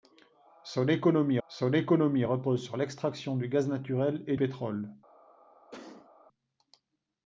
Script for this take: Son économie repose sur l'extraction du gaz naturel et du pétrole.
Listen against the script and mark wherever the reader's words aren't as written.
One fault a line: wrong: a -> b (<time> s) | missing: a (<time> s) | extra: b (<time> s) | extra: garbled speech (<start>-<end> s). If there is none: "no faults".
extra: son économie (1.5 s)
missing: du (4.4 s)